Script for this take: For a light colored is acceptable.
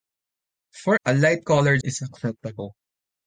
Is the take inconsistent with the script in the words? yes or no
no